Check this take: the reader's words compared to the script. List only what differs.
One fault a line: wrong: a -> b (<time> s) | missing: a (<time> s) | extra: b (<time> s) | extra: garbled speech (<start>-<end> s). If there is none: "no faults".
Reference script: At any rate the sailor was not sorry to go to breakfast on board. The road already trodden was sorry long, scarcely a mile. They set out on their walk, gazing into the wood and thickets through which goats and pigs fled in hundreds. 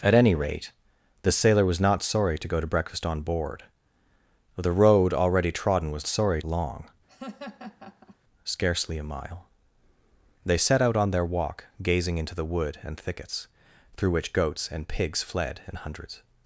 no faults